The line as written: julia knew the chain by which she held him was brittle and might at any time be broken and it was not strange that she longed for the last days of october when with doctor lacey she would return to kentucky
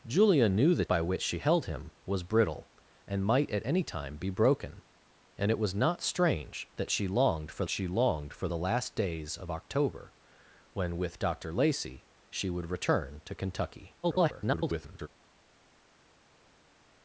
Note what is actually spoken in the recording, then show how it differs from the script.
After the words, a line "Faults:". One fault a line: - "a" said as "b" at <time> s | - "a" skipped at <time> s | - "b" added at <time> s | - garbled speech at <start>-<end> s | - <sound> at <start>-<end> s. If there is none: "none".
julia knew the by which she held him was brittle and might at any time be broken and it was not strange that she longed for she longed for the last days of october when with doctor lacey she would return to kentucky [garbled]
Faults:
- "chain" skipped at 0.8 s
- "she longed for" added at 7.7 s
- garbled speech at 14.0-15.1 s